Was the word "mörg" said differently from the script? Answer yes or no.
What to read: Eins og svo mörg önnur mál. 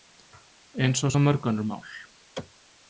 no